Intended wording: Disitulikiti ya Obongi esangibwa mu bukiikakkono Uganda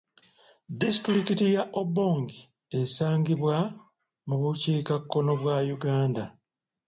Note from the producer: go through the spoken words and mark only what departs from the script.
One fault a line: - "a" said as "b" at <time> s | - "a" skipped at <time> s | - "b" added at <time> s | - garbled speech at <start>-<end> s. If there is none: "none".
- "bwa" added at 5.4 s